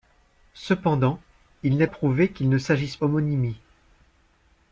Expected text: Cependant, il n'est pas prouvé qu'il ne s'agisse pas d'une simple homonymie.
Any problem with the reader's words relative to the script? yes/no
yes